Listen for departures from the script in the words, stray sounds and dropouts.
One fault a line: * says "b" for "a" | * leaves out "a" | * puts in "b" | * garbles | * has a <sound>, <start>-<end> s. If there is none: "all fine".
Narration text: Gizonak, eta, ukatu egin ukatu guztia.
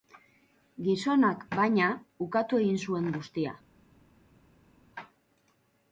* says "baina" for "eta"
* says "zuen" for "ukatu"